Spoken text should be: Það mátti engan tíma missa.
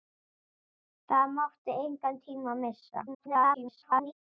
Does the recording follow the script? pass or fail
fail